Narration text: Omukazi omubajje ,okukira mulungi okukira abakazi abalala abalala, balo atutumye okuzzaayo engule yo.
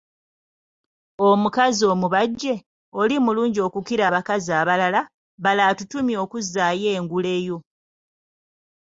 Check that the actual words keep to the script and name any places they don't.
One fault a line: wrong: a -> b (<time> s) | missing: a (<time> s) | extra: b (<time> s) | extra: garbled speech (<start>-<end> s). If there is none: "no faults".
wrong: okukira -> oli (3.0 s)
missing: abalala (5.0 s)